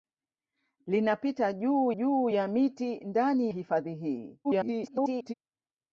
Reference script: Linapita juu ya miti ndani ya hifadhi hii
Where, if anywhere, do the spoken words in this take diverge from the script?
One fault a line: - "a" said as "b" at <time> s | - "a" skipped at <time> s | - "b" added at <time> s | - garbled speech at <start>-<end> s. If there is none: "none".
- "juu" added at 1.9 s
- "ya" skipped at 3.5 s
- garbled speech at 4.4-5.3 s